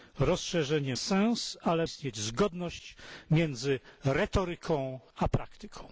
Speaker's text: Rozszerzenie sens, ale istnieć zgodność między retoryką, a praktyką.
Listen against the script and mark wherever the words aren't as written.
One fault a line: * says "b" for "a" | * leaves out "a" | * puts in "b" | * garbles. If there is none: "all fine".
all fine